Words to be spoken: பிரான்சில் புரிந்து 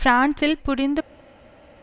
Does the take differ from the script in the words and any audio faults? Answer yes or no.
no